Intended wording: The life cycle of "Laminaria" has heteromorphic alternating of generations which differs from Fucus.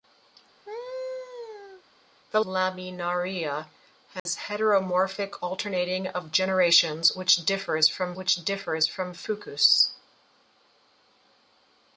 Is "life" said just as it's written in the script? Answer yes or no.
no